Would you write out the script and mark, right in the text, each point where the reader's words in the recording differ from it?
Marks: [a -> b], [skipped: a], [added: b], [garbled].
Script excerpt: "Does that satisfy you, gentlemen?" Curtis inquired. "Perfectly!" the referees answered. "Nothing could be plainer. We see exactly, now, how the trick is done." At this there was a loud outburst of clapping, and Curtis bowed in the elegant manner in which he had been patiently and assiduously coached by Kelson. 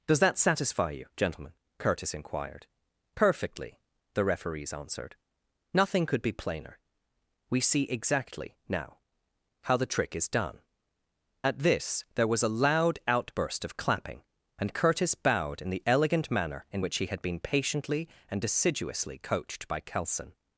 "Does that satisfy you, gentlemen?" Curtis inquired. "Perfectly!" the referees answered. "Nothing could be plainer. We see exactly, now, how the trick is done." At this there was a loud outburst of clapping, and Curtis bowed in the elegant manner in which he had been patiently and assiduously coached by Kelson.